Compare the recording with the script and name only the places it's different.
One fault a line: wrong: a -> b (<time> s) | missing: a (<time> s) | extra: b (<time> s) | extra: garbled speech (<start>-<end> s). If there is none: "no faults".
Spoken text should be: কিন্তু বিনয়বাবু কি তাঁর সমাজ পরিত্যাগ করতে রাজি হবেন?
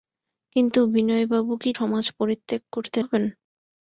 missing: তাঁর (1.7 s)
missing: রাজি (3.0 s)